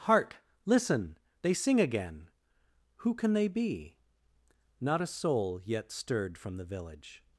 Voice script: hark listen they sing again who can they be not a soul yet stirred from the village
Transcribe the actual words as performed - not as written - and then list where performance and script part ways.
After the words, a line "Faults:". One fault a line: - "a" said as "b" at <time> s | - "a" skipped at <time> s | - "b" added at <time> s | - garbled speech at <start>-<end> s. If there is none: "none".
hark listen they sing again who can they be not a soul yet stirred from the village
Faults:
none